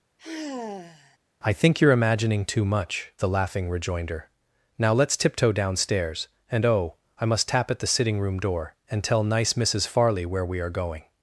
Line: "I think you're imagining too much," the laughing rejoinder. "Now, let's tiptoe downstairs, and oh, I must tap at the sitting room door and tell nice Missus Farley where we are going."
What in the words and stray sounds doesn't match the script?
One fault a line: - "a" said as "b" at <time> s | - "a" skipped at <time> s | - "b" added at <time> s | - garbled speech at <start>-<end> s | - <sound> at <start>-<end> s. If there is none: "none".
- sigh at 0.2-1.2 s